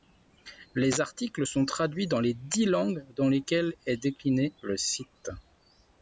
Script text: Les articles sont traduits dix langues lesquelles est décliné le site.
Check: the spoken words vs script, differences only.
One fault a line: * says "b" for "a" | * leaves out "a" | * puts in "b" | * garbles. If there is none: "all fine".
* puts in "dans les"
* puts in "dans"